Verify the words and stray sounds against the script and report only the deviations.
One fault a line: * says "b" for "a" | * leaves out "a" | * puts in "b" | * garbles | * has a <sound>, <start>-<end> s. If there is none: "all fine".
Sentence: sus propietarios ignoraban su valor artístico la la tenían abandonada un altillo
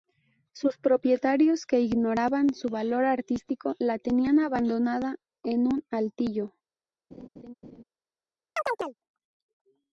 * puts in "que"
* leaves out "la"
* puts in "en"
* has a laugh, 7.1-7.8 s
* has a chirp, 8.6-9.0 s